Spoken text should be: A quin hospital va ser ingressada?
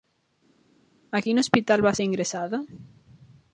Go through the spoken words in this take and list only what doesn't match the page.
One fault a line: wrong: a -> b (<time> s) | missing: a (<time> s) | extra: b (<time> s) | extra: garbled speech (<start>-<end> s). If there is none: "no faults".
no faults